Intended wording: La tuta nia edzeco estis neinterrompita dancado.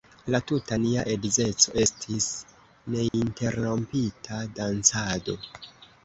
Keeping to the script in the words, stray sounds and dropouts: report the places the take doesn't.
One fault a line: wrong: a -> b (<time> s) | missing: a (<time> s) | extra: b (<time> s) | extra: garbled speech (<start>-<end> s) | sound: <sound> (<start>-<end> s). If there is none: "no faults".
sound: dropout (3.1-3.1 s)